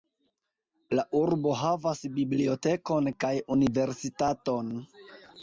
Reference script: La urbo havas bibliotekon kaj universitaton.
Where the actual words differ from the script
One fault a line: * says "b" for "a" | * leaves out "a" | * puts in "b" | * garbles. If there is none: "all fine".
all fine